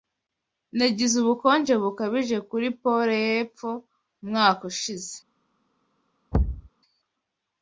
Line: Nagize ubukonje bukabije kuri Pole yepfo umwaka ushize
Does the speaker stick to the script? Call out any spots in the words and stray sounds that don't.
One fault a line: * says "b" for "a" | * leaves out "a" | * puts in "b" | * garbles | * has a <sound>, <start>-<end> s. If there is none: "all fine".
* has a thud, 6.3-6.7 s